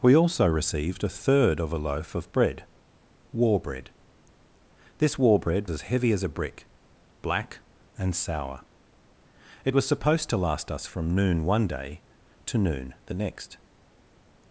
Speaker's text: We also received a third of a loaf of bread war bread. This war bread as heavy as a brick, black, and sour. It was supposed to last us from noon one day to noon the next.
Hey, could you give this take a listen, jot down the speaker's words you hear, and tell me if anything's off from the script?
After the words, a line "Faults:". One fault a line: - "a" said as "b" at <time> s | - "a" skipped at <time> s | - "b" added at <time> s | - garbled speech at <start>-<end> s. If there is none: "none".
We also received a third of a loaf of bread war bread. This war bread as heavy as a brick, black, and sour. It was supposed to last us from noon one day to noon the next.
Faults:
none